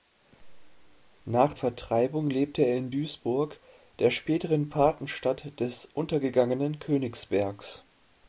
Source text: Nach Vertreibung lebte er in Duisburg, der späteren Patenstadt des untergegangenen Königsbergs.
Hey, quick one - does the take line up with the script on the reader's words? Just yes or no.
yes